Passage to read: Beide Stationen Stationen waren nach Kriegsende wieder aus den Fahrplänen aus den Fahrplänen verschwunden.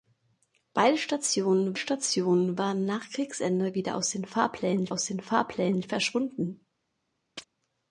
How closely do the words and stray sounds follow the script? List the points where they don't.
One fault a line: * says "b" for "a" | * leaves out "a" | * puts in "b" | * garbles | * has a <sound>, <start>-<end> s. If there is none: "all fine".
* has a chirp, 7.4-7.5 s